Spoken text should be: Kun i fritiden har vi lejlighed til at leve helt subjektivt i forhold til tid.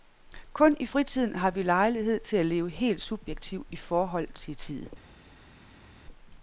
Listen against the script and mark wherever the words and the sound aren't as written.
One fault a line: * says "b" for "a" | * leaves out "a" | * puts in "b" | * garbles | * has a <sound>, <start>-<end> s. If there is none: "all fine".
all fine